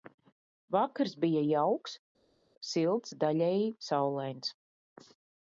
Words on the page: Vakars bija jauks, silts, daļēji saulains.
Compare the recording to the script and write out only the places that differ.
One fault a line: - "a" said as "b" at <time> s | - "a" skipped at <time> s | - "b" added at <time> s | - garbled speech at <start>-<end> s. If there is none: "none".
none